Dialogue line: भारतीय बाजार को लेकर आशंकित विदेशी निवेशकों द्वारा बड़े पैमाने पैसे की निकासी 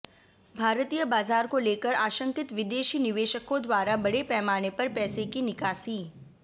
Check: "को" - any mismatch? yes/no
no